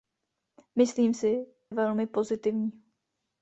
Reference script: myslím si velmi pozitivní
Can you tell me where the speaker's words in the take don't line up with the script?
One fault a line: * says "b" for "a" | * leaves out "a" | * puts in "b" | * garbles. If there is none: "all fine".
all fine